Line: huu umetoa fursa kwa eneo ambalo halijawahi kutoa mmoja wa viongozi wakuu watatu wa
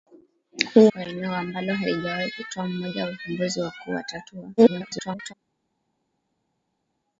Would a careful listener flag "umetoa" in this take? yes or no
yes